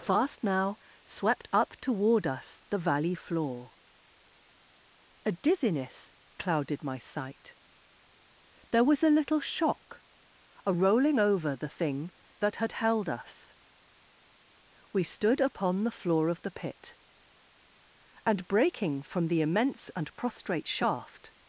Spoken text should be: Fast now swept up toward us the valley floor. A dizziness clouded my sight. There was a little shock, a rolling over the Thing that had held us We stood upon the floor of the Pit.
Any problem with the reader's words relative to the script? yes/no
yes